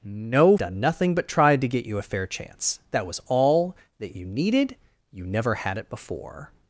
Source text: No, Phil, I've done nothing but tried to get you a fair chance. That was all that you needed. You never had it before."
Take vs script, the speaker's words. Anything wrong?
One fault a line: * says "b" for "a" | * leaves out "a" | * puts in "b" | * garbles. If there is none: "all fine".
* leaves out "Phil I've"